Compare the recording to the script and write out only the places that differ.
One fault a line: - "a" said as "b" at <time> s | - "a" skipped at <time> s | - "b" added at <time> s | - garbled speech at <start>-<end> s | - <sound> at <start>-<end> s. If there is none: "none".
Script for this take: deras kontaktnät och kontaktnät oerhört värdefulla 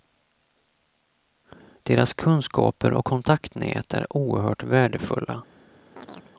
- "kontaktnät" said as "kunskaper" at 2.1 s
- "är" added at 3.9 s
- chirp at 6.0-6.3 s